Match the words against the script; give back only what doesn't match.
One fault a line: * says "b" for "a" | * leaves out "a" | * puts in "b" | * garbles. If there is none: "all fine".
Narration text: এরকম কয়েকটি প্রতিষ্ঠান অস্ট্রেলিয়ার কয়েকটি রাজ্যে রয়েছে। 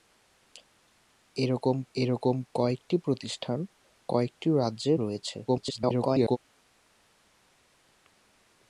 * puts in "এরকম"
* leaves out "অস্ট্রেলিয়ার"
* garbles